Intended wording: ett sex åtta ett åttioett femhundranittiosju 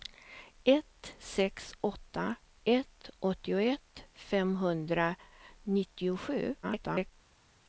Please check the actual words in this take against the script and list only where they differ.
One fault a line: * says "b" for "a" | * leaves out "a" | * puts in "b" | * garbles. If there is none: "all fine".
* garbles